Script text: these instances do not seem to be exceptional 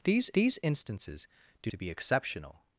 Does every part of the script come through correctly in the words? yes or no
no